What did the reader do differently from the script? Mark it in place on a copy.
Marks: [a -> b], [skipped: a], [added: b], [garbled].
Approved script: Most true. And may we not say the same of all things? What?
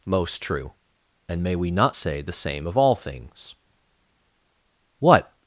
Most true. And may we not say the same of all things? What?